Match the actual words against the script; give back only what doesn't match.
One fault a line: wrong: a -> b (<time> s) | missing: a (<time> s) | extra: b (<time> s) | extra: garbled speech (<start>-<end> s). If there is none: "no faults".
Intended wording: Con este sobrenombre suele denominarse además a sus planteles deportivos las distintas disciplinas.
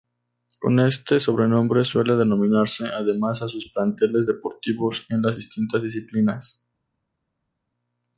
extra: en (5.1 s)